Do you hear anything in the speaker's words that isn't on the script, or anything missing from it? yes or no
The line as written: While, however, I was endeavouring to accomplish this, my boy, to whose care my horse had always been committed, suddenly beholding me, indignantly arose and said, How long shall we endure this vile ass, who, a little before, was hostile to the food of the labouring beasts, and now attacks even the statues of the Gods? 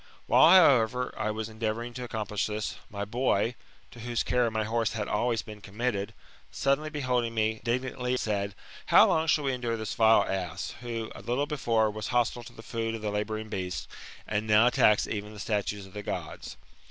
yes